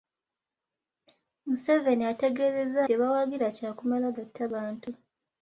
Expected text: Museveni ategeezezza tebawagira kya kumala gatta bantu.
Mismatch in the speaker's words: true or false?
false